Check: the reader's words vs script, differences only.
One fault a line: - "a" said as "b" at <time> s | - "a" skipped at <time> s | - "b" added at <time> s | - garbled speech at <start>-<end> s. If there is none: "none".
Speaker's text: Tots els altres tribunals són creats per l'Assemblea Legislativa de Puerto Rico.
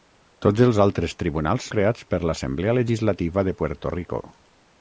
- "són" skipped at 1.7 s